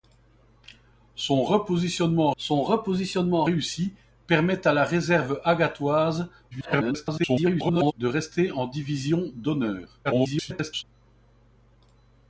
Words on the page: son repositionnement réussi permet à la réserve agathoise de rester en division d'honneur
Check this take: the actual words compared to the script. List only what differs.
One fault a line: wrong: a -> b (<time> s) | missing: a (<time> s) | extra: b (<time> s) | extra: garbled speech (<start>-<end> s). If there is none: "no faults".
extra: son repositionnement (2.4 s)
extra: garbled speech (6.5-7.9 s)
extra: garbled speech (10.0-10.8 s)